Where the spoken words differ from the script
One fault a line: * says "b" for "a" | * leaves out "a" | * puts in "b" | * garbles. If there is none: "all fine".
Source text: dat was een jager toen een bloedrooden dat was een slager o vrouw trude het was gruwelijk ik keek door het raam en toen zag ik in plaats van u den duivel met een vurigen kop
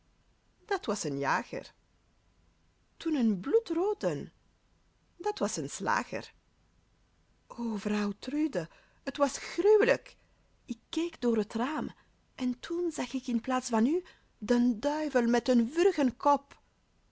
all fine